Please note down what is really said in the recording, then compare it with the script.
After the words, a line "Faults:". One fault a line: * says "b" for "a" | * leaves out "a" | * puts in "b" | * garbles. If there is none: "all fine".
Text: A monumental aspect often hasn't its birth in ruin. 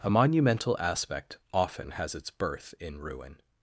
A monumental aspect often has its birth in ruin.
Faults:
* says "has" for "hasn't"